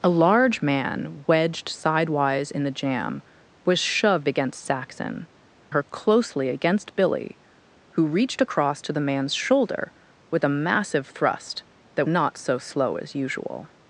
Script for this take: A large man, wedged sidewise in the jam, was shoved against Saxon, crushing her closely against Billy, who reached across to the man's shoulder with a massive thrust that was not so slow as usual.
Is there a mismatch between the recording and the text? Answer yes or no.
yes